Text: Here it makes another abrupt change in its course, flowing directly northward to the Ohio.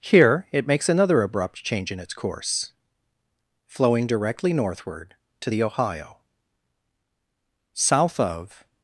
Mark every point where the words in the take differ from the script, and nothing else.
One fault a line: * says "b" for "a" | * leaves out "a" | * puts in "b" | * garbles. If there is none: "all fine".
* puts in "South of"